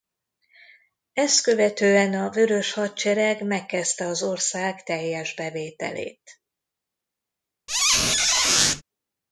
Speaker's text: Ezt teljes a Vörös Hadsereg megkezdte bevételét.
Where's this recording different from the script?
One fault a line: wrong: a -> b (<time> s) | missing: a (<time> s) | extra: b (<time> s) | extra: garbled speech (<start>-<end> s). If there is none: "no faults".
wrong: teljes -> követően (1.4 s)
extra: az ország teljes (4.0 s)